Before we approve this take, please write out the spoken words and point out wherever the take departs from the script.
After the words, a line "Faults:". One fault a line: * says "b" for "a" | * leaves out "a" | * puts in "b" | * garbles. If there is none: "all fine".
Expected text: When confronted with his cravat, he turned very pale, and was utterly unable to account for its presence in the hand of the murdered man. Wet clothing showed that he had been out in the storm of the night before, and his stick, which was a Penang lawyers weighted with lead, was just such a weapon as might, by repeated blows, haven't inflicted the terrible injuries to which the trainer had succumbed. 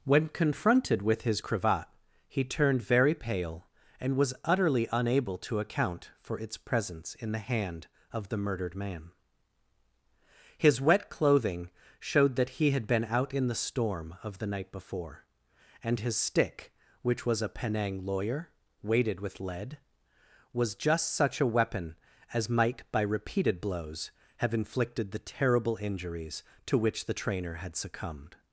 When confronted with his cravat, he turned very pale, and was utterly unable to account for its presence in the hand of the murdered man. His wet clothing showed that he had been out in the storm of the night before, and his stick, which was a Penang lawyer weighted with lead, was just such a weapon as might, by repeated blows, have inflicted the terrible injuries to which the trainer had succumbed.
Faults:
* puts in "His"
* says "lawyer" for "lawyers"
* says "have" for "haven't"